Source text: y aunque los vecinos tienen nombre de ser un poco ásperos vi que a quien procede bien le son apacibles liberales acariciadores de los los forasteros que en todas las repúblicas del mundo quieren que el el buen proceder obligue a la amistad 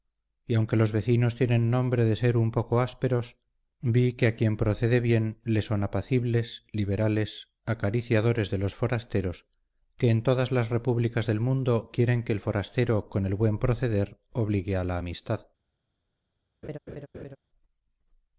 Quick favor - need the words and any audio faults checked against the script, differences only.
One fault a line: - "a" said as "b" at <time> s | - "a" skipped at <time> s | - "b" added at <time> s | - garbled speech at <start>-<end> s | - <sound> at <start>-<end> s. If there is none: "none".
- "los" skipped at 8.7 s
- "forastero con" added at 12.4 s
- laugh at 16.6-17.4 s